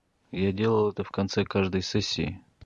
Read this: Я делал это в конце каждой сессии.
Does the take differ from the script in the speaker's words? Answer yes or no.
no